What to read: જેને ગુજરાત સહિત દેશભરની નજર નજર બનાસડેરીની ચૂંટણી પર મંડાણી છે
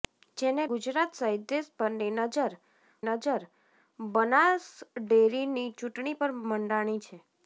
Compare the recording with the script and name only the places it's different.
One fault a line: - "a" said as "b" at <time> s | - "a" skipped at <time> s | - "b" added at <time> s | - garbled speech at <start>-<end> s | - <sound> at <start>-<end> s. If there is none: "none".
none